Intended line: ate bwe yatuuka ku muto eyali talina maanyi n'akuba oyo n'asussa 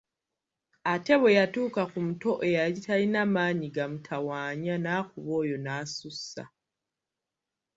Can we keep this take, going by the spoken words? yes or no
no